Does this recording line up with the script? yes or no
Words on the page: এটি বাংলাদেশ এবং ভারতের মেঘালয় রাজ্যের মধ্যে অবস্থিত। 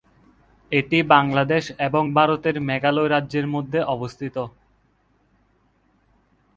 yes